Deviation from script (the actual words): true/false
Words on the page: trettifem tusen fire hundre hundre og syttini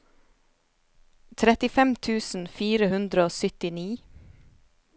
true